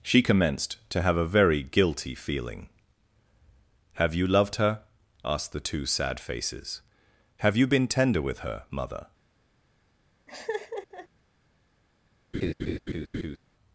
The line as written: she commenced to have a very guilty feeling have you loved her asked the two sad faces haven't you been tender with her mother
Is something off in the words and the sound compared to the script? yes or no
yes